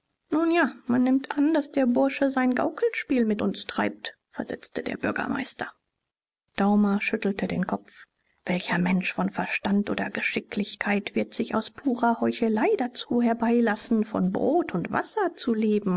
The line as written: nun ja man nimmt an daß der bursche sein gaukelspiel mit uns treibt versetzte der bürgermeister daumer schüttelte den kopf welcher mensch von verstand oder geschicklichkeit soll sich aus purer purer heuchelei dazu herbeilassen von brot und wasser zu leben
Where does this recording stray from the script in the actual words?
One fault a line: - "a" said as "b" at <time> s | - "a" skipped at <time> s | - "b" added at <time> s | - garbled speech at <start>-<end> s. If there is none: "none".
- "soll" said as "wird" at 11.1 s
- "purer" skipped at 12.2 s